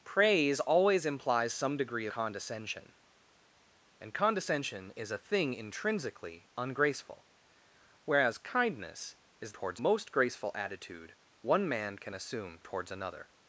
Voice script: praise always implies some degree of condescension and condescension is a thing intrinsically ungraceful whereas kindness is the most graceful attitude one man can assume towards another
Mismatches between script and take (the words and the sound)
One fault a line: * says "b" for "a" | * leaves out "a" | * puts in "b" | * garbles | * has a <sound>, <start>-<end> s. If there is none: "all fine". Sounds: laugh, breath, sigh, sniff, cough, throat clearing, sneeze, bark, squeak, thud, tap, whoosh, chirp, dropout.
* leaves out "of"
* says "towards" for "the"